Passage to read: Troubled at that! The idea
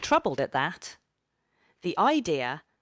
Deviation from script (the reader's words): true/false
false